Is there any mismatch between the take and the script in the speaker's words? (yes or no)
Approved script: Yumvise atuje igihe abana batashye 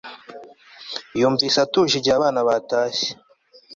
no